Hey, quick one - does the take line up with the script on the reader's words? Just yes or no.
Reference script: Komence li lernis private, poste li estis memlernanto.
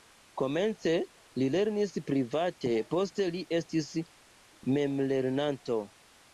yes